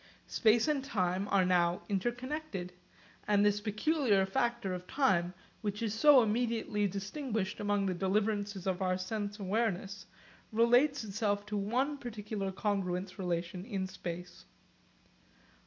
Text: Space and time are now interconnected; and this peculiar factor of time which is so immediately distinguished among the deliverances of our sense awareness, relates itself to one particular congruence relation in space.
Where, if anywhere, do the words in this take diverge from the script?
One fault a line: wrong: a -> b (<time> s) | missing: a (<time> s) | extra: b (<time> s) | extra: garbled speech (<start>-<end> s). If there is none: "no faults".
no faults